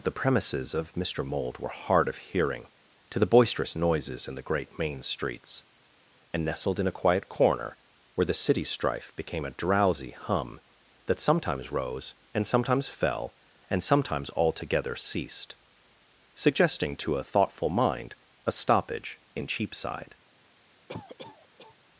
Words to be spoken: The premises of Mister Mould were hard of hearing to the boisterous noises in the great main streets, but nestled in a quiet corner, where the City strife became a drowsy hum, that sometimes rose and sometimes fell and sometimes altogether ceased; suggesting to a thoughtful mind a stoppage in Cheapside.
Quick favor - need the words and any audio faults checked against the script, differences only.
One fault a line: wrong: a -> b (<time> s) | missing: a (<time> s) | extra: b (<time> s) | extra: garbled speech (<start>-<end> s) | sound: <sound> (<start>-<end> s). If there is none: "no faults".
wrong: but -> and (6.3 s)
sound: cough (20.9-21.8 s)